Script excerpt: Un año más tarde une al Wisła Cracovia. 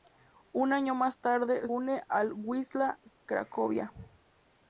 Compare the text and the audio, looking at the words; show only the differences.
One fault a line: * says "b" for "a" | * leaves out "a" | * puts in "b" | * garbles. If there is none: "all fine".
all fine